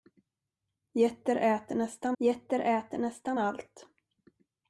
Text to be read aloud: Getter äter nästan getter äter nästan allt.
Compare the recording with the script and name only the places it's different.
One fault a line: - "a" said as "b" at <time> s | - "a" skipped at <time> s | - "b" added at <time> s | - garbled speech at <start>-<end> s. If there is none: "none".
none